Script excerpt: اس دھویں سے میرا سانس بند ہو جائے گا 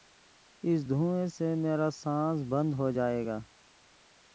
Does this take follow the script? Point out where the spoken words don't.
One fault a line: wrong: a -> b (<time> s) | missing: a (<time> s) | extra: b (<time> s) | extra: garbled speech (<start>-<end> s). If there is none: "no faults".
no faults